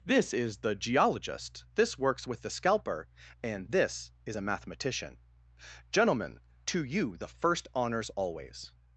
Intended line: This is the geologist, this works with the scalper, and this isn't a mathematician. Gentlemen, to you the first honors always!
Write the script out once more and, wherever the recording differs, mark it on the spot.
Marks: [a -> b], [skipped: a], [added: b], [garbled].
This is the geologist, this works with the scalper, and this [isn't -> is] a mathematician. Gentlemen, to you the first honors always!